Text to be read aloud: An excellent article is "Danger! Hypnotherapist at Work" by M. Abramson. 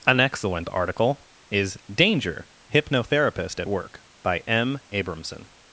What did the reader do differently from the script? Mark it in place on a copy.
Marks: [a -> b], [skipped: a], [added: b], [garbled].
An excellent article is "Danger! Hypnotherapist at Work" by M. Abramson.